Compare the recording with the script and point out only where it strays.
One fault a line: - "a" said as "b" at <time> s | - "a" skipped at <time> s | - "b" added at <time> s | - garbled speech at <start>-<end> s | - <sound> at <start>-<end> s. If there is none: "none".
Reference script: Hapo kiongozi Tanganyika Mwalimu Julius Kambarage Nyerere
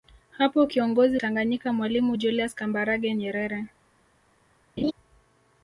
- laugh at 4.8-4.9 s